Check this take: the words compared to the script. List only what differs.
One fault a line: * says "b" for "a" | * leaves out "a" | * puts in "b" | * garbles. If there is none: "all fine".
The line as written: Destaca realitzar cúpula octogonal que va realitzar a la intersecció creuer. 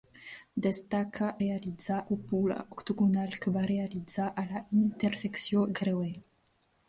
all fine